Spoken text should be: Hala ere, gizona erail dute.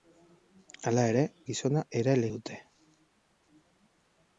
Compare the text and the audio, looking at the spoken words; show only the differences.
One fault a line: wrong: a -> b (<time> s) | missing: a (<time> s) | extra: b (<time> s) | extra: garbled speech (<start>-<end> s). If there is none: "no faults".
no faults